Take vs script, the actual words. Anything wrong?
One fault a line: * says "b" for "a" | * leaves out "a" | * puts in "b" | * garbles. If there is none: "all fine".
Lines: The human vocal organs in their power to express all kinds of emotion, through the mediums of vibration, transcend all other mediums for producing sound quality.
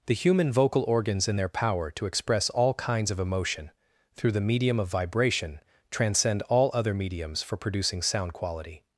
* says "medium" for "mediums"